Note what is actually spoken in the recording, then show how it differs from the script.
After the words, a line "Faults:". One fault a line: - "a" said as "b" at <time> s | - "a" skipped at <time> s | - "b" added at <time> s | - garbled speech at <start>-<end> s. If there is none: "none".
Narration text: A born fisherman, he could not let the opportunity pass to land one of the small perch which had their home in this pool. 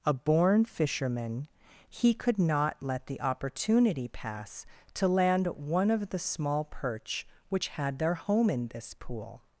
A born fisherman, he could not let the opportunity pass to land one of the small perch which had their home in this pool.
Faults:
none